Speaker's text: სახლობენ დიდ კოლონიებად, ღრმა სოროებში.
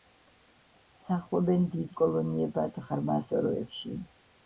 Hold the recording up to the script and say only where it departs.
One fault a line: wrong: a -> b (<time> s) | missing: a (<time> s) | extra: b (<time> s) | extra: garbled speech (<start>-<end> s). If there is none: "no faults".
no faults